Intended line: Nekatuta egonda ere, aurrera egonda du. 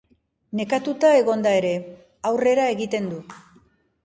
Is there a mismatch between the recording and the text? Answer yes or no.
yes